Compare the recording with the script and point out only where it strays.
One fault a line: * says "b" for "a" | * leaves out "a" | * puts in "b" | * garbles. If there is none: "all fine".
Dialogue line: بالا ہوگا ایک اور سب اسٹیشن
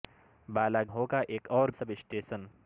all fine